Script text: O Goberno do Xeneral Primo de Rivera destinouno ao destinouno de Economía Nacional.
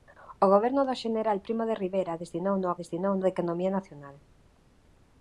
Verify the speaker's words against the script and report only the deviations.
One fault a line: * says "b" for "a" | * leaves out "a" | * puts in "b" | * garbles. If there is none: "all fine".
all fine